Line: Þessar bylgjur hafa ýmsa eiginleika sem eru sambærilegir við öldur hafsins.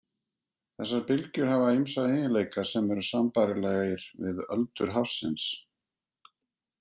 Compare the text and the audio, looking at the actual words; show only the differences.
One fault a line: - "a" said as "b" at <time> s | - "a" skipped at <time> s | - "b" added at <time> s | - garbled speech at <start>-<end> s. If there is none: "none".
none